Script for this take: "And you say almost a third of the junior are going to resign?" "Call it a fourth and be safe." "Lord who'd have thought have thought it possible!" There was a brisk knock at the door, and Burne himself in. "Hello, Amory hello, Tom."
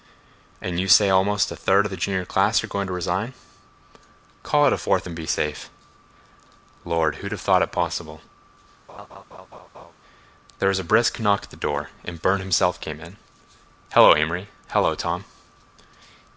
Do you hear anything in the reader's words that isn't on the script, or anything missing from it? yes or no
yes